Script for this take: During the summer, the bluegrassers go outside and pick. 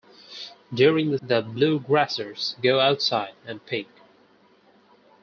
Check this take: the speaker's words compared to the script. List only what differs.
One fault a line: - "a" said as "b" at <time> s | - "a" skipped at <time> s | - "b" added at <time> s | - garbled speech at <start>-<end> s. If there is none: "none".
- "summer" skipped at 1.2 s